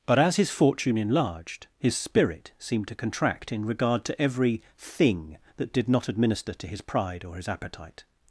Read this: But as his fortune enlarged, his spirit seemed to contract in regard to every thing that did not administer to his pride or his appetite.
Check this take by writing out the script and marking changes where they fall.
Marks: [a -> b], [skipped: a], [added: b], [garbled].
But as his fortune enlarged, his spirit seemed to contract in regard to every thing that did not administer to his pride or his appetite.